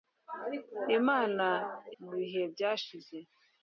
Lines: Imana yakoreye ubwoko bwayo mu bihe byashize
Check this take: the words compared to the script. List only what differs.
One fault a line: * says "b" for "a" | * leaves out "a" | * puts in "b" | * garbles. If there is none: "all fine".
* leaves out "yakoreye ubwoko bwayo"